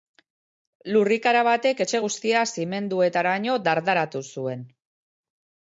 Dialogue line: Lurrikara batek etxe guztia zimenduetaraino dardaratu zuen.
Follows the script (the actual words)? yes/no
yes